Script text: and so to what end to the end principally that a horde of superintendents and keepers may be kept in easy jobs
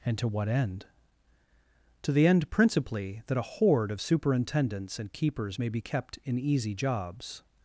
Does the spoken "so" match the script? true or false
false